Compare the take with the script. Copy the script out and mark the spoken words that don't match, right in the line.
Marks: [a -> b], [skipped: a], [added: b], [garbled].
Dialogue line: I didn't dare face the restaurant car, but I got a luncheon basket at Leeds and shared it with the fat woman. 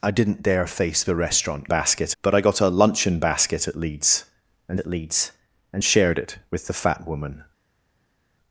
I didn't dare face the restaurant [car, -> basket] but I got a luncheon basket at Leeds and [added: at Leeds and] shared it with the fat woman.